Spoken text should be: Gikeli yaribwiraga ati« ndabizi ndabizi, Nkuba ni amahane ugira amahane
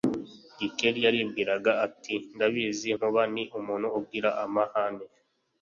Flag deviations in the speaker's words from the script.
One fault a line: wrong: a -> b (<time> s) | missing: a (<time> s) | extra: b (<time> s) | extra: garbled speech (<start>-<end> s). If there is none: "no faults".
missing: ndabizi (2.9 s)
wrong: amahane -> umuntu (3.6 s)